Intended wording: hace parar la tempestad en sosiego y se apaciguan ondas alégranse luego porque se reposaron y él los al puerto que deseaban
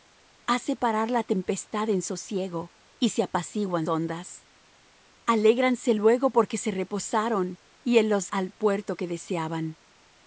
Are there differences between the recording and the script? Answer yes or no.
no